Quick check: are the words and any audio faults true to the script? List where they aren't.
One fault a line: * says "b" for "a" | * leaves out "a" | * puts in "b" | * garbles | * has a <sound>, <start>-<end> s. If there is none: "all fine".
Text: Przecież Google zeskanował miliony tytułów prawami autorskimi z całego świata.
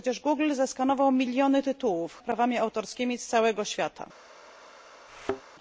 * has a thud, 5.1-5.4 s